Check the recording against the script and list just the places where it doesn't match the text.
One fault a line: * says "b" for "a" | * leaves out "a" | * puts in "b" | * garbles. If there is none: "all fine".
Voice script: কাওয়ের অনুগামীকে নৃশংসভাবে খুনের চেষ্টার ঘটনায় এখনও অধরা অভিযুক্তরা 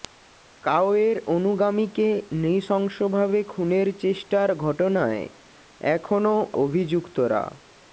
* leaves out "অধরা"